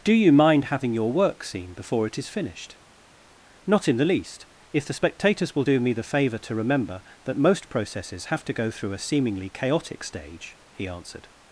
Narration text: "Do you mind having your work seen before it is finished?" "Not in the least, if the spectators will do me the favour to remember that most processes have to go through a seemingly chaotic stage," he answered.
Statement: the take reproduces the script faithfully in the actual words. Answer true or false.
true